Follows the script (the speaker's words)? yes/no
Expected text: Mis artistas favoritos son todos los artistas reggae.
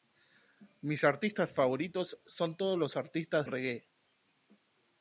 yes